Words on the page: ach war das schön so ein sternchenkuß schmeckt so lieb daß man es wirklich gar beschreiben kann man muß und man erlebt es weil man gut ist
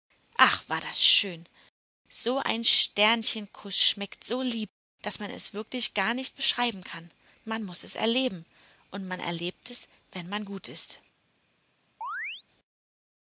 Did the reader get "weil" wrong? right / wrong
wrong